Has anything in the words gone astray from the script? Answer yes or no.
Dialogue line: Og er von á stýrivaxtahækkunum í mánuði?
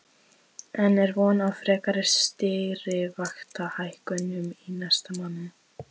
yes